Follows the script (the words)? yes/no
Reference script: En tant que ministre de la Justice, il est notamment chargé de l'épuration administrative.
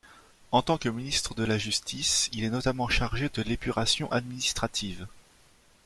yes